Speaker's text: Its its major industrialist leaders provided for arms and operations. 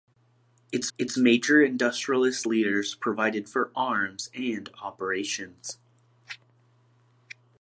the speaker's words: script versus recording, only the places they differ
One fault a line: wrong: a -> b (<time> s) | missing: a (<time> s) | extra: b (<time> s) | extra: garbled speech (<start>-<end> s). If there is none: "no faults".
no faults